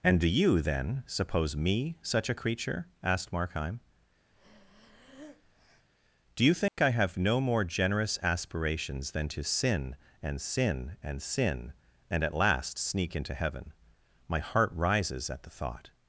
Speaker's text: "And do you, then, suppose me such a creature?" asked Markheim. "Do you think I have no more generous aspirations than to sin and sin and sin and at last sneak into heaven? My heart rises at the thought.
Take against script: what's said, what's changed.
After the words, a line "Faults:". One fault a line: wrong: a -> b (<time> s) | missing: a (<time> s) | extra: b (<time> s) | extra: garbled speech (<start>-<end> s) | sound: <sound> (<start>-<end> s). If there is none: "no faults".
"And do you, then, suppose me such a creature?" asked Markheim. "Do you think I have no more generous aspirations than to sin and sin and sin and at last sneak into heaven? My heart rises at the thought.
Faults:
sound: breath (4.3-5.9 s)
sound: dropout (6.7-6.8 s)